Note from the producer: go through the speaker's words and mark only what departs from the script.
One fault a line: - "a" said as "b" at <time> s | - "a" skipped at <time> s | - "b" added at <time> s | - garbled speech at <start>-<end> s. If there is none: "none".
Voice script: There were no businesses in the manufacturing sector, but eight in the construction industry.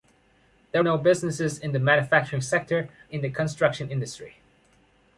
- "were" skipped at 0.8 s
- "but eight" skipped at 2.9 s